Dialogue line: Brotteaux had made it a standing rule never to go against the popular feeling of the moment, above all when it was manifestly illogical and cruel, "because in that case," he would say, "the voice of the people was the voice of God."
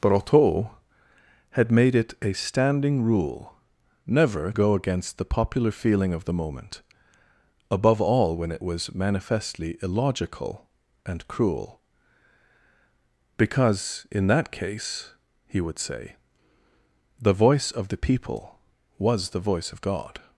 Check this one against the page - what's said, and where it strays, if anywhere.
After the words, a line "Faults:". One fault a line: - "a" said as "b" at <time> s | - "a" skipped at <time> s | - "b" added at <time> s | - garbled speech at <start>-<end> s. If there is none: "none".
Brotteaux had made it a standing rule never go against the popular feeling of the moment, above all when it was manifestly illogical and cruel, "because in that case," he would say, "the voice of the people was the voice of God."
Faults:
- "to" skipped at 4.5 s